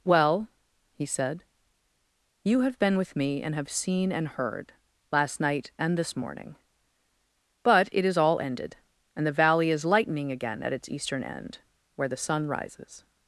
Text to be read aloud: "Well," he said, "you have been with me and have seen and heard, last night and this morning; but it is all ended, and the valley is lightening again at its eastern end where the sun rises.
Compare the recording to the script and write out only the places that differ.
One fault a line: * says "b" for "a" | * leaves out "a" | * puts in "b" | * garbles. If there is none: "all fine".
all fine